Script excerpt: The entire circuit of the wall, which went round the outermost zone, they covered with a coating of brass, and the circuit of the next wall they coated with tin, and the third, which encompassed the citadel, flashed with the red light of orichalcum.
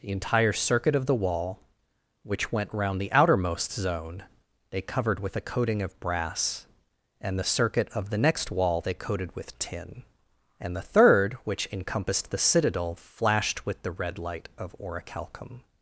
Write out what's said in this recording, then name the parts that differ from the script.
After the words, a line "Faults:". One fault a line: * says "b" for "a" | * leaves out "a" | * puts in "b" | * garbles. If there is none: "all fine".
The entire circuit of the wall, which went round the outermost zone, they covered with a coating of brass, and the circuit of the next wall they coated with tin, and the third, which encompassed the citadel, flashed with the red light of orichalcum.
Faults:
all fine